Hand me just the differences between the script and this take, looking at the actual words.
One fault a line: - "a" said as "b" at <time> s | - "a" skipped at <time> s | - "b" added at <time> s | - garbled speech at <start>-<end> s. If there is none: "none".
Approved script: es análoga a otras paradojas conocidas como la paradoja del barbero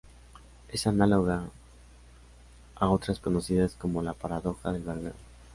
- "paradojas" skipped at 3.2 s